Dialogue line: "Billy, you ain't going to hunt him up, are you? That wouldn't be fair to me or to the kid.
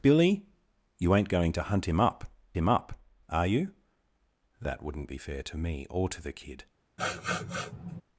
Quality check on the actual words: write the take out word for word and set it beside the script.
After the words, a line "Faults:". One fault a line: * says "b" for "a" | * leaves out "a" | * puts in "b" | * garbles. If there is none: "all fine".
"Billy, you ain't going to hunt him up him up, are you? That wouldn't be fair to me or to the kid.
Faults:
* puts in "him up"